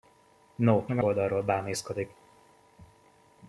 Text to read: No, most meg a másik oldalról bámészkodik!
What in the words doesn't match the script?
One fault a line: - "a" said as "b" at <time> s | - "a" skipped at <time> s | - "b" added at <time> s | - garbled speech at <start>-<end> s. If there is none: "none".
- "most" skipped at 0.8 s
- "másik" skipped at 1.0 s